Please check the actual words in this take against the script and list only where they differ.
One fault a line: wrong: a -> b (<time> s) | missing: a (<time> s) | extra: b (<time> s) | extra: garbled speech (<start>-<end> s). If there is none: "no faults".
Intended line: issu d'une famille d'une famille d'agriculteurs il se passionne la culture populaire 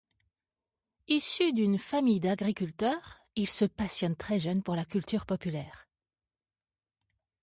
missing: d'une famille (2.2 s)
extra: très jeune pour (4.2 s)